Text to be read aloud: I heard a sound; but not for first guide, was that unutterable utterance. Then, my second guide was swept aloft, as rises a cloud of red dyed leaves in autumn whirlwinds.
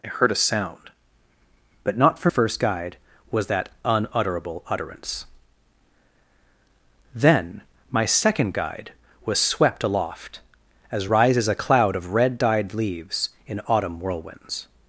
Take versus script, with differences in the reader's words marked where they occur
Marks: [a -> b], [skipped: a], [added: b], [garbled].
I heard a sound; but not for first guide, was that unutterable utterance. Then, my second guide was swept aloft, as rises a cloud of red dyed leaves in autumn whirlwinds.